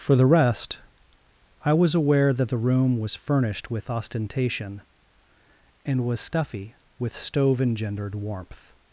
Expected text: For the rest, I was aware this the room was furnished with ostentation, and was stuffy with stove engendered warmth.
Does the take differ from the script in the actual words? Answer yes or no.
yes